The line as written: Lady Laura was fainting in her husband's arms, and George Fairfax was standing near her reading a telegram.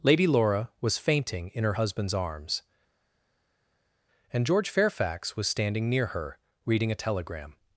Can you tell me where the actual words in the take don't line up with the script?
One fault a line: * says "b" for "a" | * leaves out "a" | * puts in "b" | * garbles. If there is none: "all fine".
all fine